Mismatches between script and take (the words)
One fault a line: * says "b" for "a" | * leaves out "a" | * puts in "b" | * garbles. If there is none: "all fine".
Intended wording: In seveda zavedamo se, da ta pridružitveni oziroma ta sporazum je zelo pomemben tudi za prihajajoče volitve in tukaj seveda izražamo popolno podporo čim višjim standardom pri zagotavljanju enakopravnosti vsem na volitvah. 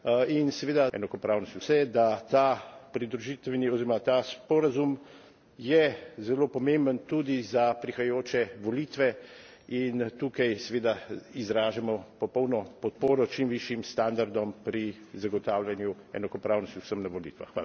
* says "enakopravnosti" for "zavedamo"